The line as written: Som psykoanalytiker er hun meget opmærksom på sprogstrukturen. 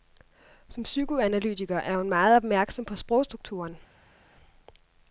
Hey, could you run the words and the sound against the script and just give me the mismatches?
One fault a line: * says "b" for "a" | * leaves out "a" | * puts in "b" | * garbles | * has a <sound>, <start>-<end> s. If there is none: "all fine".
all fine